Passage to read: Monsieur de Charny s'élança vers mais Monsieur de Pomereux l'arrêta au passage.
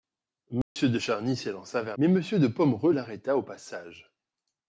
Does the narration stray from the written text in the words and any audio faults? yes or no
yes